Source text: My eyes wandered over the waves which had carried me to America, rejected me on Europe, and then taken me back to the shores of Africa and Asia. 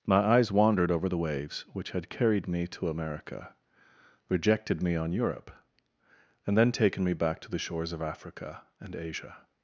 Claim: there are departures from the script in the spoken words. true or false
false